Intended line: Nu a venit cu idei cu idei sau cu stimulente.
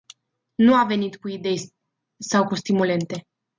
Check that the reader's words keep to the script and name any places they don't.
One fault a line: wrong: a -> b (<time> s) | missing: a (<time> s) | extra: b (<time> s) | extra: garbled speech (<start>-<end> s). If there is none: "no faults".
missing: cu idei (1.7 s)